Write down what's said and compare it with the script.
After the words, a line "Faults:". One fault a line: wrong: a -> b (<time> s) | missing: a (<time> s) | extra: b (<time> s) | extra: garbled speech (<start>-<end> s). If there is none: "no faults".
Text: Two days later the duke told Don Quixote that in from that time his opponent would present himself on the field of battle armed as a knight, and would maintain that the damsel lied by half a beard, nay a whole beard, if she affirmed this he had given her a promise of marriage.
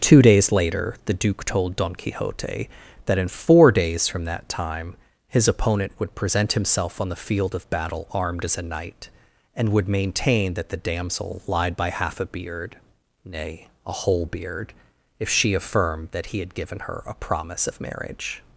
Two days later the duke told Don Quixote that in four days from that time his opponent would present himself on the field of battle armed as a knight, and would maintain that the damsel lied by half a beard, nay a whole beard, if she affirmed that he had given her a promise of marriage.
Faults:
extra: four days (3.3 s)
wrong: this -> that (16.1 s)